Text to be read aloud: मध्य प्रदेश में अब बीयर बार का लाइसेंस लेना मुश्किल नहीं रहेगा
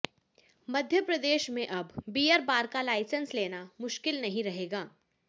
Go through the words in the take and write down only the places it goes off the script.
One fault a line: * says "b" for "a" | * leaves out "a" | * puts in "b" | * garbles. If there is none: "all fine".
all fine